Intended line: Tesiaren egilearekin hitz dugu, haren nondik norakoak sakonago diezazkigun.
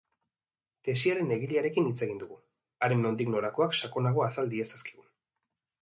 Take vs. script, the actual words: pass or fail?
fail